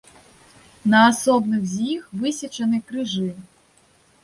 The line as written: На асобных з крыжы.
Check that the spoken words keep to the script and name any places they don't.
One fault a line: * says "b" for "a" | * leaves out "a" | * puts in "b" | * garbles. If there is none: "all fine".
* puts in "іх высечаны"